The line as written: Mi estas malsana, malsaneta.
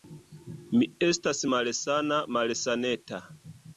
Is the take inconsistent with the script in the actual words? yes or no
no